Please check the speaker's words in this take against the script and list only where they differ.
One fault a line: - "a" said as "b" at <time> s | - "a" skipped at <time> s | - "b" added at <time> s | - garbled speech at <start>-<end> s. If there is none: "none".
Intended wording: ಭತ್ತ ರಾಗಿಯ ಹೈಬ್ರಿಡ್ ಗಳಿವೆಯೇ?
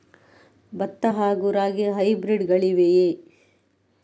- "ಹಾಗೂ" added at 1.1 s